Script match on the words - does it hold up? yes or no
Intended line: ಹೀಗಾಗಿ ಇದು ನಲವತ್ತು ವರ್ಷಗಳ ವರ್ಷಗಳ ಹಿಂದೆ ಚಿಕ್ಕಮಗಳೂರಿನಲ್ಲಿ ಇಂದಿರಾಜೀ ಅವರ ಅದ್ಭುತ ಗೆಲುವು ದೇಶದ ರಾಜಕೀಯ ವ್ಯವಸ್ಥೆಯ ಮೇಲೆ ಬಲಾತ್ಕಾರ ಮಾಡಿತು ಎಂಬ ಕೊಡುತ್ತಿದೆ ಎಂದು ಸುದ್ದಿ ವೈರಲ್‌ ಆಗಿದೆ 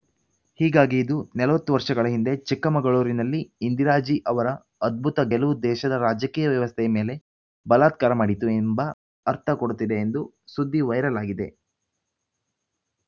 no